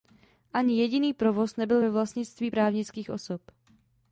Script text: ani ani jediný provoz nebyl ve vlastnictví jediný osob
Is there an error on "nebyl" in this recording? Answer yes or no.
no